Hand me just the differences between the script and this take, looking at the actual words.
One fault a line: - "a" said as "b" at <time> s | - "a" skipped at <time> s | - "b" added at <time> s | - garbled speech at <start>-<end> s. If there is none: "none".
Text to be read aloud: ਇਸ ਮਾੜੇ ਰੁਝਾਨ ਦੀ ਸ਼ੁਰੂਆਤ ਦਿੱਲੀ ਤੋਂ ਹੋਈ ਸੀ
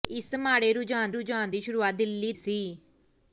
- "ਰੁਝਾਨ" added at 1.1 s
- "ਤੋਂ ਹੋਈ" skipped at 2.3 s